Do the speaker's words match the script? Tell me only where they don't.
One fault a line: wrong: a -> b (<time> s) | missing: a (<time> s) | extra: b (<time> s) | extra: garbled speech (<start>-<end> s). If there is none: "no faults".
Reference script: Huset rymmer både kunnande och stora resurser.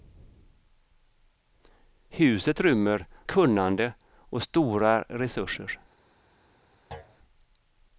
missing: både (3.0 s)